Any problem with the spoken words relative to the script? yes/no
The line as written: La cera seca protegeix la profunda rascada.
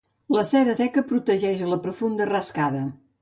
no